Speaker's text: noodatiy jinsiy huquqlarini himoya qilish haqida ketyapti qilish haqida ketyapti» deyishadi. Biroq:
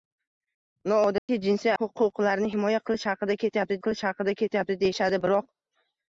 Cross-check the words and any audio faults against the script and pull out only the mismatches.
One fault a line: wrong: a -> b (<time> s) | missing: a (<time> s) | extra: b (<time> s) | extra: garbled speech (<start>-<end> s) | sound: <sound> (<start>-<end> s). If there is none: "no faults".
sound: dropout (1.2-1.3 s)